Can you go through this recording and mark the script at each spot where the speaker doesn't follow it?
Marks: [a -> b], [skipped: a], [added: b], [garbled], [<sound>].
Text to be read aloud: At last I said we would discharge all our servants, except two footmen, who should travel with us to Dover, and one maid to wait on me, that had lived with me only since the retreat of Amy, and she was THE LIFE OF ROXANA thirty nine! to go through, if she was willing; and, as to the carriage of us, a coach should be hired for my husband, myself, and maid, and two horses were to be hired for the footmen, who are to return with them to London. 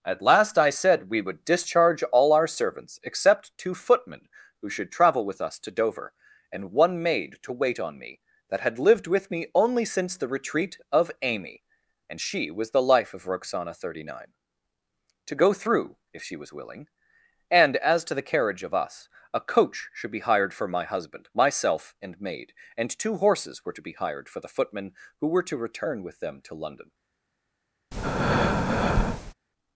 At last I said we would discharge all our servants, except two footmen, who should travel with us to Dover, and one maid to wait on me, that had lived with me only since the retreat of Amy, and she was THE LIFE OF ROXANA thirty nine! to go through, if she was willing; and, as to the carriage of us, a coach should be hired for my husband, myself, and maid, and two horses were to be hired for the footmen, who [are -> were] to return with them to London. [breath]